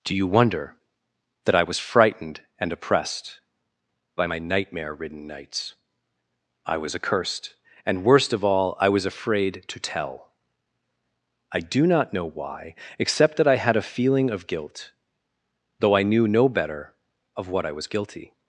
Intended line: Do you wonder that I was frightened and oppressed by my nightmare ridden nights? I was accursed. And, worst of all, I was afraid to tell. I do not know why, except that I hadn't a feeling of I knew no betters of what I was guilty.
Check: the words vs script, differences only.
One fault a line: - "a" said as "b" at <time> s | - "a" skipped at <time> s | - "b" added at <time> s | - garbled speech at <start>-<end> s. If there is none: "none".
- "hadn't" said as "had" at 13.6 s
- "guilt though" added at 14.5 s
- "betters" said as "better" at 16.5 s